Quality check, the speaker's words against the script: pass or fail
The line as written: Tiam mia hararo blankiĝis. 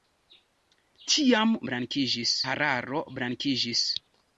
fail